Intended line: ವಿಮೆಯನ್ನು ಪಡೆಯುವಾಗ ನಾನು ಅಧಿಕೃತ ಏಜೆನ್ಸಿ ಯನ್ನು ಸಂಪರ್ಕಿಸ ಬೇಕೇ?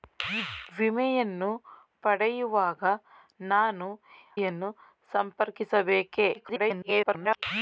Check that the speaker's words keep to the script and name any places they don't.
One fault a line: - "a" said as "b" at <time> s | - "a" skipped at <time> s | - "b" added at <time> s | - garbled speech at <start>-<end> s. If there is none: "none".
- "ಅಧಿಕೃತ ಏಜೆನ್ಸಿ" skipped at 3.9 s
- garbled speech at 6.3-7.4 s